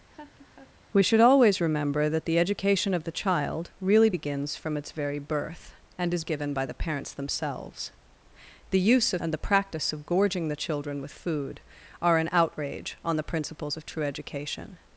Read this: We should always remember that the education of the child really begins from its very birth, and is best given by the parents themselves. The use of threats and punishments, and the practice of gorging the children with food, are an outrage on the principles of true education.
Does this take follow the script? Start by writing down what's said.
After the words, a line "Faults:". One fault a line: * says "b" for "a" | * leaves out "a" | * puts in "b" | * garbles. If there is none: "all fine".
We should always remember that the education of the child really begins from its very birth, and is given by the parents themselves. The use of and the practice of gorging the children with food, are an outrage on the principles of true education.
Faults:
* leaves out "best"
* leaves out "threats and punishments"